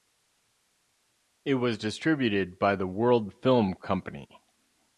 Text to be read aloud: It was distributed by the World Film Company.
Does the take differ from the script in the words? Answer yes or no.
no